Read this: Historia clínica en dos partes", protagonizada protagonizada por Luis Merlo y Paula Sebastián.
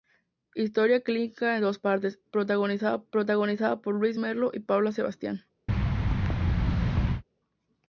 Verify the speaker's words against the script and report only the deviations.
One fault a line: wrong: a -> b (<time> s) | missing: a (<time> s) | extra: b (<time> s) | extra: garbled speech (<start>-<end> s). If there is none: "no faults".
no faults